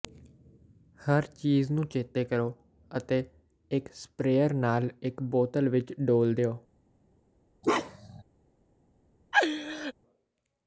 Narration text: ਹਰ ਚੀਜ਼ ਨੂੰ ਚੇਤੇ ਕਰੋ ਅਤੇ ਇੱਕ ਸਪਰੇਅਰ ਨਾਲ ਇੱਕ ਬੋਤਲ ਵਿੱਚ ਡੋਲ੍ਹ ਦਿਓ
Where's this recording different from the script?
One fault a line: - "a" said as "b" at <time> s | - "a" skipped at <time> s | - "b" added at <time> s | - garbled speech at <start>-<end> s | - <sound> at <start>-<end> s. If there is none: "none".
- bark at 7.6-8.2 s
- laugh at 9.3-9.9 s